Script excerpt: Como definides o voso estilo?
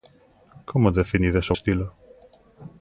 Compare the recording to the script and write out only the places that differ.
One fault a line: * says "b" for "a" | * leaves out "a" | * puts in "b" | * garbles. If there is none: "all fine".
* leaves out "voso"